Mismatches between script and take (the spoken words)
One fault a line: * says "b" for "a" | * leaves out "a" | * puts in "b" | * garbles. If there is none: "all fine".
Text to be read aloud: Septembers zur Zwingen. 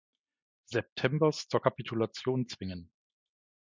* puts in "Kapitulation"